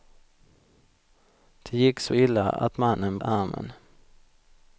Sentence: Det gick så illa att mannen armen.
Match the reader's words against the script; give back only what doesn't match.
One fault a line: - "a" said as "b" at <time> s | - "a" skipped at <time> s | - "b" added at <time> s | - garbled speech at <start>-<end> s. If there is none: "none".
none